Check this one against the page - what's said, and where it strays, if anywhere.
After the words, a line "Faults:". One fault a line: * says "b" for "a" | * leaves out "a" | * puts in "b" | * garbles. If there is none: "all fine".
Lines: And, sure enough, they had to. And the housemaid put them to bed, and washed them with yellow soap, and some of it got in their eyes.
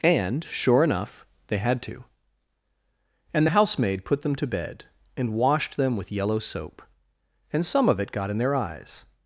And, sure enough, they had to. And the housemaid put them to bed, and washed them with yellow soap, and some of it got in their eyes.
Faults:
all fine